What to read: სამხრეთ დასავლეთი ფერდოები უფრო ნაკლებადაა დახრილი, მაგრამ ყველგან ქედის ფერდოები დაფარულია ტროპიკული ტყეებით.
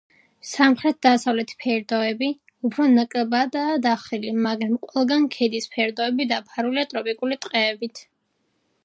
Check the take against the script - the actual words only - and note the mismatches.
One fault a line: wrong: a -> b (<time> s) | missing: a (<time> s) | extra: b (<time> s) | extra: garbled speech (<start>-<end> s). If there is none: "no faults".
no faults